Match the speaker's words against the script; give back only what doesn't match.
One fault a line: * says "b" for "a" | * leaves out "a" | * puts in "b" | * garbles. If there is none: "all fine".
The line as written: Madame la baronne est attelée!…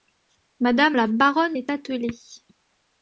all fine